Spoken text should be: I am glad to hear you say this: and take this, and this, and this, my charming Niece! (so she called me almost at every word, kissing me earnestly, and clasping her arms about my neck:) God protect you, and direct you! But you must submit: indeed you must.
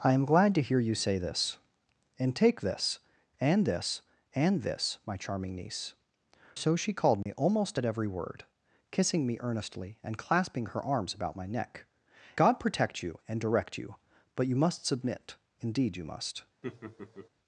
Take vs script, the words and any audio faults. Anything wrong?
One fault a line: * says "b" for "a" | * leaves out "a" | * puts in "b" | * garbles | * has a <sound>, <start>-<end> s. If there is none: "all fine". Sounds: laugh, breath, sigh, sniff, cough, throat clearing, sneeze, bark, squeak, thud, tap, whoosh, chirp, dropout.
* has a dropout, 7.2-7.3 s
* has a laugh, 16.6-17.3 s